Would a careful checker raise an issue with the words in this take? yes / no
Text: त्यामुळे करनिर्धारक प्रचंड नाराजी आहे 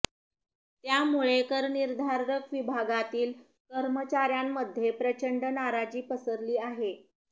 yes